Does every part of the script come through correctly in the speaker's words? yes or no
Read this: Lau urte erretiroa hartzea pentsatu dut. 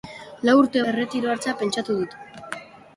yes